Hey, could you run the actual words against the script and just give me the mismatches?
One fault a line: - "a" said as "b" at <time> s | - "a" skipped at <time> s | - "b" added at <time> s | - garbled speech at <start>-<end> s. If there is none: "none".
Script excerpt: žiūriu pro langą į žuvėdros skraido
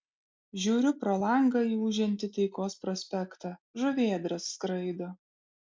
- "ūžiantį taikos prospektą" added at 1.9 s